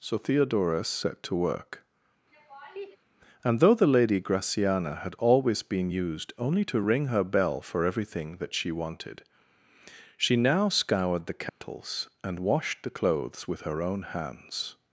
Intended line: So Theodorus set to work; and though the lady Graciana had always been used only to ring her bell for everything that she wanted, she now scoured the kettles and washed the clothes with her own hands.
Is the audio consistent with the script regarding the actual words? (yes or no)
yes